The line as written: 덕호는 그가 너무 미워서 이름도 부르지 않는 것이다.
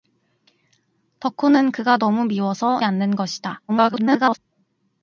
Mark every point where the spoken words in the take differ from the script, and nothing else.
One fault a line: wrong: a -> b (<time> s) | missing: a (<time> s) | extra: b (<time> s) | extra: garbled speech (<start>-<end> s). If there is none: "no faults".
missing: 이름도 부르지 (2.8 s)
extra: garbled speech (3.7-4.4 s)